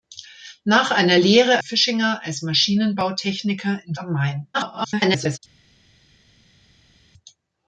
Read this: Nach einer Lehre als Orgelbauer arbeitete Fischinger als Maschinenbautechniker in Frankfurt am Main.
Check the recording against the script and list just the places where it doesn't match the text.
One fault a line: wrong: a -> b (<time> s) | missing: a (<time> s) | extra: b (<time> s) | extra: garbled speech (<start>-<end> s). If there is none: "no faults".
missing: als Orgelbauer arbeitete (1.6 s)
missing: Frankfurt (3.9 s)
extra: garbled speech (4.5-5.4 s)